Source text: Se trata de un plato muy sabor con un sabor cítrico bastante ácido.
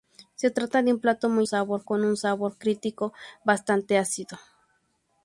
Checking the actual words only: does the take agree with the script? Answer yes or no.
yes